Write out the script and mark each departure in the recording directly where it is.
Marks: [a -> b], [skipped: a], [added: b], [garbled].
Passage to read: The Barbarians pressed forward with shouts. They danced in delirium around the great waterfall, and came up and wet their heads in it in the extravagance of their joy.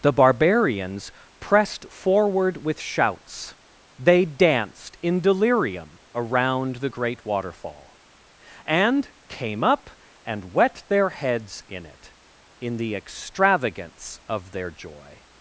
The Barbarians pressed forward with shouts. They danced in delirium around the great waterfall, and came up and wet their heads in it in the extravagance of their joy.